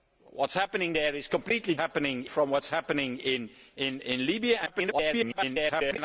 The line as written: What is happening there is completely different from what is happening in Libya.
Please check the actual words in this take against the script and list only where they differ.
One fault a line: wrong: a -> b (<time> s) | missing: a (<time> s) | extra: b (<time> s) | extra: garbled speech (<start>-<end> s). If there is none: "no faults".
wrong: different -> happening (1.7 s)
extra: garbled speech (4.7-6.0 s)